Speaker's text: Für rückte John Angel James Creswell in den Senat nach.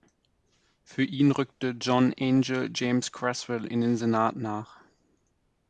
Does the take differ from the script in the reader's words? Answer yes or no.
yes